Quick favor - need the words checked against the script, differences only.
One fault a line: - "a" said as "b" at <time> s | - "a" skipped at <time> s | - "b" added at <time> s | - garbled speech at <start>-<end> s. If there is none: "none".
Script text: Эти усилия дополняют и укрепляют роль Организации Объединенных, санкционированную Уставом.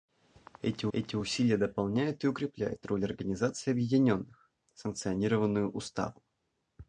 - "эти" added at 0.9 s